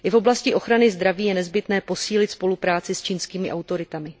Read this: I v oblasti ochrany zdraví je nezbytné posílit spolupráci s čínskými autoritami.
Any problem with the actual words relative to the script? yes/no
no